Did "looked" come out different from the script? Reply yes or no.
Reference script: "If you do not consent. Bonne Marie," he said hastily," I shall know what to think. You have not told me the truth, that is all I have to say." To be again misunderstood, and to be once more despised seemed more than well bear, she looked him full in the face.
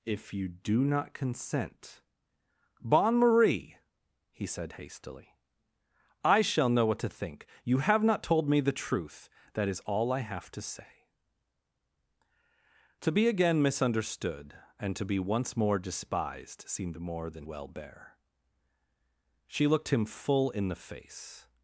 no